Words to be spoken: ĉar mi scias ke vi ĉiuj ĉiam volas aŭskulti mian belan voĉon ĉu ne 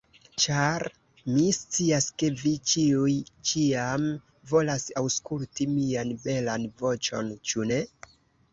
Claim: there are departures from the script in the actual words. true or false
false